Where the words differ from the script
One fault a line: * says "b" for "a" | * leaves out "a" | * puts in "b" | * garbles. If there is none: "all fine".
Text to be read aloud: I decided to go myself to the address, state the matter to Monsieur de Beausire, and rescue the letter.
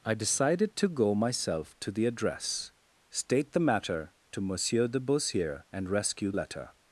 * leaves out "the"